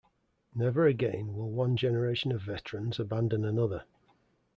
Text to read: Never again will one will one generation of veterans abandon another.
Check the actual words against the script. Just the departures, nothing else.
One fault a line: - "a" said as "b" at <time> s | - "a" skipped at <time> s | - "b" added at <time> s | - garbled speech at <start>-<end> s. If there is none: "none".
- "will one" skipped at 1.8 s